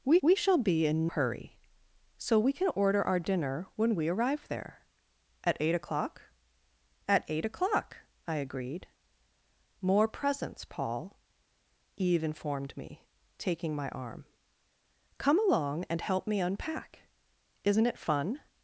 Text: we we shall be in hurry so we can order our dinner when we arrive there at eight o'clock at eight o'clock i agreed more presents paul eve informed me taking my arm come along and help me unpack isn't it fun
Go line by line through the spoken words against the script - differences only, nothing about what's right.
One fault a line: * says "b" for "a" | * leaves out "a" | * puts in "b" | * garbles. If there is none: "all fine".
all fine